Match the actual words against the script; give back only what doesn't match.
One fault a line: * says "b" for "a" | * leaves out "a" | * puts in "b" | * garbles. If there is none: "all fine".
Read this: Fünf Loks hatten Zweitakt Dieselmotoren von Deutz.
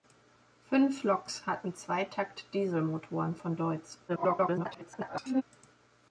* garbles